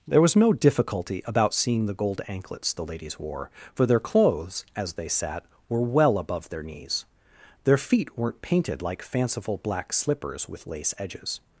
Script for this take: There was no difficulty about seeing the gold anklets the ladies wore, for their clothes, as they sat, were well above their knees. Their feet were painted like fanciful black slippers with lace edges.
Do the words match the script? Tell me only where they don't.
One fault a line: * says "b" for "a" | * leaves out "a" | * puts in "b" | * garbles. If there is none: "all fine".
* says "weren't" for "were"